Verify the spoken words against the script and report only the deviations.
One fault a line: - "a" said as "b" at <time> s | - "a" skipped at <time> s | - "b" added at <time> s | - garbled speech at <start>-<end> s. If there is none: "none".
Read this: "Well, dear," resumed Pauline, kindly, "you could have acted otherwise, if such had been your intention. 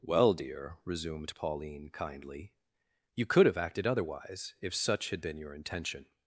none